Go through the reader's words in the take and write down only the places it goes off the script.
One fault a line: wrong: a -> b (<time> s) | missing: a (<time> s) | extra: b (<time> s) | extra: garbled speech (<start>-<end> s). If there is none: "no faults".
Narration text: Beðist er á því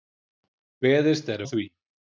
no faults